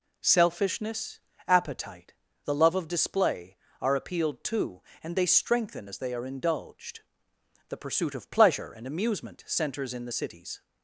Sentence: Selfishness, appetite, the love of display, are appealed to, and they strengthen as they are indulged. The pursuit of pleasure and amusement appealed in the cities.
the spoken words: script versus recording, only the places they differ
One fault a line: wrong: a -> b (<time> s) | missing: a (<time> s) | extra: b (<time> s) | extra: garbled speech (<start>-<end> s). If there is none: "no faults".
wrong: appealed -> centers (9.5 s)